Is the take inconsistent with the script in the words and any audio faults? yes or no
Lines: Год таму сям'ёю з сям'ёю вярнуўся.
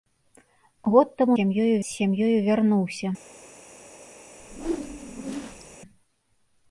yes